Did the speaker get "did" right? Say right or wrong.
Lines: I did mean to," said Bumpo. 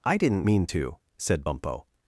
wrong